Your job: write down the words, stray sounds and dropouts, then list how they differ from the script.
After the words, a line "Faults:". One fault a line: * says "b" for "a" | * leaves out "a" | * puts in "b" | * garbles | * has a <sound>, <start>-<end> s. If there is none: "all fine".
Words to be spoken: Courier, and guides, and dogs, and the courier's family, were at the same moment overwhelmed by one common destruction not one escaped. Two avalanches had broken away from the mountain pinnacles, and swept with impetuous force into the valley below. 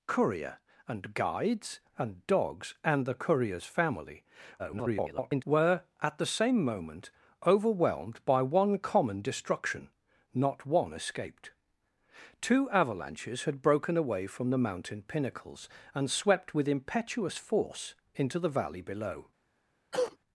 Courier, and guides, and dogs, and the courier's family, [garbled] were at the same moment overwhelmed by one common destruction not one escaped. Two avalanches had broken away from the mountain pinnacles, and swept with impetuous force into the valley below.
Faults:
* garbles
* has a cough, 19.9-20.2 s